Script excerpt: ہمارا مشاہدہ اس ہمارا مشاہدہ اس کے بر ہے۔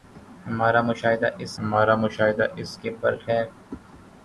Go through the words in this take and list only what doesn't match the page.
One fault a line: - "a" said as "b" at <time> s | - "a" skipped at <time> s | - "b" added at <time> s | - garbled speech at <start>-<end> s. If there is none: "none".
none